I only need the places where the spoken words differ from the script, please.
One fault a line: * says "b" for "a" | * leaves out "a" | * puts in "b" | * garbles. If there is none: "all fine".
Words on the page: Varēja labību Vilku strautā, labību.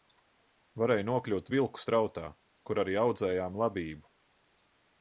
* says "nokļūt" for "labību"
* puts in "kur arī audzējām"